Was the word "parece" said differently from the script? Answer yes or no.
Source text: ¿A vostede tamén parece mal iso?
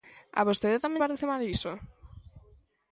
no